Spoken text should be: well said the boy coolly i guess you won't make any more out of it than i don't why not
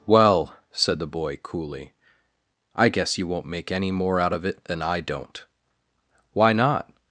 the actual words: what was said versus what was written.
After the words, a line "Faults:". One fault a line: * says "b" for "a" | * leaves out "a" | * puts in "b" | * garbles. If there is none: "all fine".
well said the boy coolly i guess you won't make any more out of it than i don't why not
Faults:
all fine